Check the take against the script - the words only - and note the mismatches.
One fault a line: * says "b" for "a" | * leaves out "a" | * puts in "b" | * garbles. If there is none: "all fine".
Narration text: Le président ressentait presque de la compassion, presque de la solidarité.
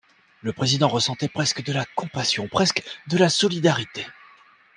all fine